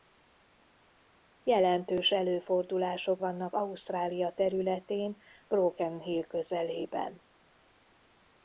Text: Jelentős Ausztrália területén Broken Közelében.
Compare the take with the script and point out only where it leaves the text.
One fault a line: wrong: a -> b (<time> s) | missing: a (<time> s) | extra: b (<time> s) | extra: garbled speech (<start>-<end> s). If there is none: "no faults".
extra: előfordulások vannak (2.1 s)
extra: Hill (6.0 s)